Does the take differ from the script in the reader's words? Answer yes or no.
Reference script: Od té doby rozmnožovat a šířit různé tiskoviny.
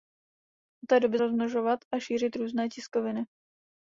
no